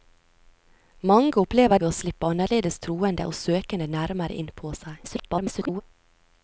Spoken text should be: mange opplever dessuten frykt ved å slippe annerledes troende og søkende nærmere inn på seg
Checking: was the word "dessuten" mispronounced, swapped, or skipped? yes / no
yes